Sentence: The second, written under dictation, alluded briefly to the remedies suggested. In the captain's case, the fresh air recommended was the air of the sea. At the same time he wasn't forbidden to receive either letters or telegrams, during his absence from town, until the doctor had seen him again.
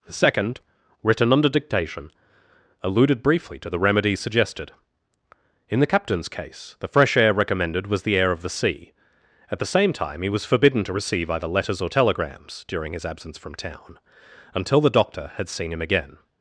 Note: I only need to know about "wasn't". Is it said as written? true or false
false